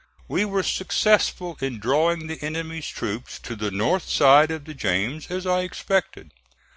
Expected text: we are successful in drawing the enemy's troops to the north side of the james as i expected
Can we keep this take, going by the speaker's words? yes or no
no